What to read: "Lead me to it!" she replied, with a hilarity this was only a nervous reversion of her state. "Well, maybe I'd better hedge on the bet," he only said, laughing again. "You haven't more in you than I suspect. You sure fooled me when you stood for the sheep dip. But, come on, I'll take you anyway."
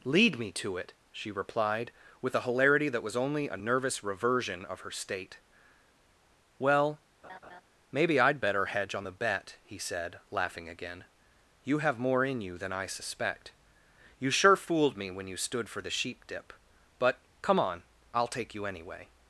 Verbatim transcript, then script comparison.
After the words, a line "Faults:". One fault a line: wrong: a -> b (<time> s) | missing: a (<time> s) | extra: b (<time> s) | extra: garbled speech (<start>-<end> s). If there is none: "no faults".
"Lead me to it!" she replied, with a hilarity that was only a nervous reversion of her state. "Well, maybe I'd better hedge on the bet," he said, laughing again. "You have more in you than I suspect. You sure fooled me when you stood for the sheep dip. But, come on, I'll take you anyway."
Faults:
wrong: this -> that (2.9 s)
missing: only (9.8 s)
wrong: haven't -> have (11.8 s)